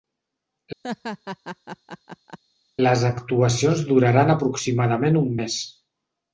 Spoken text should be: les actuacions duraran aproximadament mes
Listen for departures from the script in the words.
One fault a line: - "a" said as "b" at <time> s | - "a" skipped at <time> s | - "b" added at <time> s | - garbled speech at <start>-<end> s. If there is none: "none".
- "un" added at 5.3 s